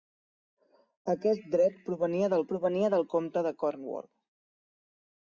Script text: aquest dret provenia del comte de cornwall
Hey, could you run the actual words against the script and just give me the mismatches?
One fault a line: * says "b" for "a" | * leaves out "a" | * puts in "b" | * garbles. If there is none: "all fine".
* puts in "provenia del"